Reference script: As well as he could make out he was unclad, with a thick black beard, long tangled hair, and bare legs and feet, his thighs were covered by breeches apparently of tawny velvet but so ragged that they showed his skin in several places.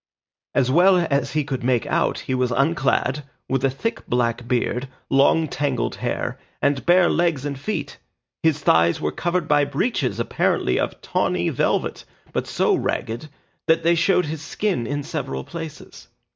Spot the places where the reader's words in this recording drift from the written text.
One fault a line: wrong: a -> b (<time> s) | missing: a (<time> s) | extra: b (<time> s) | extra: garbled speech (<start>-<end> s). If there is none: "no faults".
no faults